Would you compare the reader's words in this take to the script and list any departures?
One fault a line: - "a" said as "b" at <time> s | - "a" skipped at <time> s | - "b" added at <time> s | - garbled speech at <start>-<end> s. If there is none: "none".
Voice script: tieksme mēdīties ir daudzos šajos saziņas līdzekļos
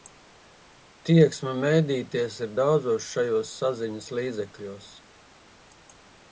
none